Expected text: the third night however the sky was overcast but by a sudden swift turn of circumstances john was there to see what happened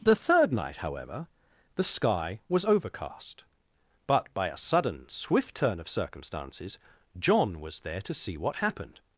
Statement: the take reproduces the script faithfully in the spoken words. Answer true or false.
true